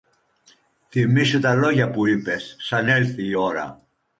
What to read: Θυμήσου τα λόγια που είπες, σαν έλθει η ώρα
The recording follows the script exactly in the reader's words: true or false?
true